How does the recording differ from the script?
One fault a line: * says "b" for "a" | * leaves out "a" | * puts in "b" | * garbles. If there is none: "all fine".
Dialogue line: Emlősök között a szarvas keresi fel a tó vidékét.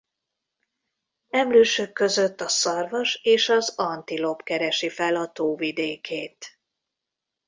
* puts in "és az antilop"